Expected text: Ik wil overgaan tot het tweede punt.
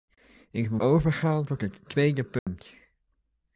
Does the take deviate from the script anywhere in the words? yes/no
no